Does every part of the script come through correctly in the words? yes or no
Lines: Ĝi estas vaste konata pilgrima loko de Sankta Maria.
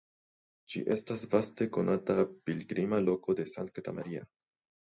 yes